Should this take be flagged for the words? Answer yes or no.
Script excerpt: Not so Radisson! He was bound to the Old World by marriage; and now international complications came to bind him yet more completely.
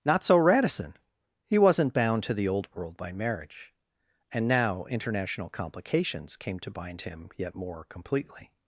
yes